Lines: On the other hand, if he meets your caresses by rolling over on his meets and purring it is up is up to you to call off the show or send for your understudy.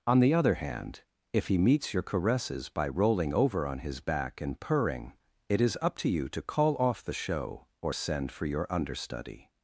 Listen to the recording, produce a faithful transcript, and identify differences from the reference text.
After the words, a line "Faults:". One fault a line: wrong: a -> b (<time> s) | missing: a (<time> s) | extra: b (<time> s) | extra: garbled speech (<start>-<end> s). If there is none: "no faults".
On the other hand, if he meets your caresses by rolling over on his back and purring it is up to you to call off the show or send for your understudy.
Faults:
wrong: meets -> back (4.0 s)
missing: is up (6.0 s)